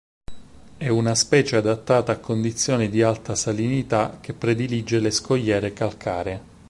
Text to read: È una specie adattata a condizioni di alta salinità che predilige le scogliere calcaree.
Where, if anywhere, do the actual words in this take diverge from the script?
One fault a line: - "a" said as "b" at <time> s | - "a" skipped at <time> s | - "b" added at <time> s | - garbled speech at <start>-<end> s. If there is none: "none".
none